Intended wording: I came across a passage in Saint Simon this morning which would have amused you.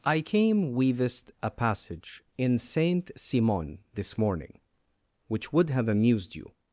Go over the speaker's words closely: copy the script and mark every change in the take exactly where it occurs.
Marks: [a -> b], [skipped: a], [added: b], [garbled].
I came [across -> weavest] a passage in Saint Simon this morning which would have amused you.